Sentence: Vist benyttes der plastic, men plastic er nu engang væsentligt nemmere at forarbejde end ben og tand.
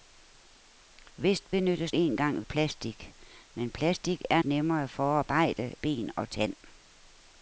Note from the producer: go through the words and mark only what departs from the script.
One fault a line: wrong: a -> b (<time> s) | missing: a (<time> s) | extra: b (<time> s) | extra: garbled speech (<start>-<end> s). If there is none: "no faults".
wrong: der -> engang (1.9 s)
missing: nu engang væsentligt (4.4 s)
missing: end (5.7 s)